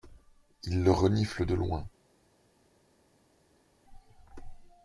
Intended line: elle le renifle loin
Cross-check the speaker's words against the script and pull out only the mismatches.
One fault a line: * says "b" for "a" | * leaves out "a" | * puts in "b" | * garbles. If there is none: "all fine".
* says "il" for "elle"
* puts in "de"